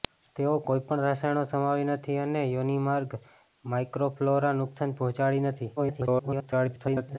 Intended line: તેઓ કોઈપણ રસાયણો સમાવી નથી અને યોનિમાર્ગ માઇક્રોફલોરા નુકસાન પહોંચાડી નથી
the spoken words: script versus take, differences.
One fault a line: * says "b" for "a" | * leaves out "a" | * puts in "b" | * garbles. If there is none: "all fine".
* garbles